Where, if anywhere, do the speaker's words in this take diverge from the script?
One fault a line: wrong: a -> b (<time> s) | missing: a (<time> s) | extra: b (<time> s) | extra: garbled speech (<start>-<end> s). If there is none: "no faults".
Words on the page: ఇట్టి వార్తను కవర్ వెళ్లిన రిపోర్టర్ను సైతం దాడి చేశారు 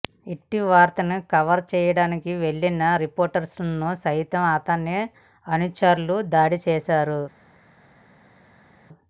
extra: చేయడానికి (1.7 s)
extra: అతని అనుచరులు (4.5 s)